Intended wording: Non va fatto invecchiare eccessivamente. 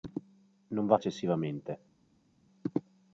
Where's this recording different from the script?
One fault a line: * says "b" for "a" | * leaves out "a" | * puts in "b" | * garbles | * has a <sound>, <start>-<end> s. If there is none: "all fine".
* leaves out "fatto invecchiare"